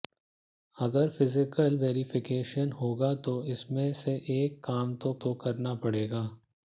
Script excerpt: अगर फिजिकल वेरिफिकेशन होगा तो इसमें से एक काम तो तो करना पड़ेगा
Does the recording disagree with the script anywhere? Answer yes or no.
no